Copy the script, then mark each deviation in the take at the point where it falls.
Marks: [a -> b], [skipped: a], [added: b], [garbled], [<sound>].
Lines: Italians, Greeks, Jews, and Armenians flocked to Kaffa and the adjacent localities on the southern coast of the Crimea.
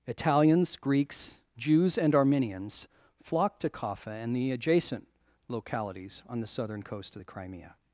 Italians, Greeks, Jews, and Armenians flocked to Kaffa and the adjacent localities on the southern coast of the Crimea.